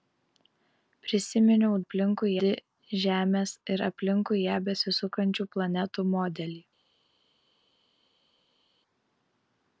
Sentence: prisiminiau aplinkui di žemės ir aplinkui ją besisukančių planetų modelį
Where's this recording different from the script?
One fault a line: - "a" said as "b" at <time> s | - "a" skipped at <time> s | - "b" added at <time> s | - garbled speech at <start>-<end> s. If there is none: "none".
none